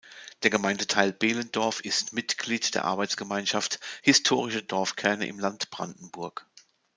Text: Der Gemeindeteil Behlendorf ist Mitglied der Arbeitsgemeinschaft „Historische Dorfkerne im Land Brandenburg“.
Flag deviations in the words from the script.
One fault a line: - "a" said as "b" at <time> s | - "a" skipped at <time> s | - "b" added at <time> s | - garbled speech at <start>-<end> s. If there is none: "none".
none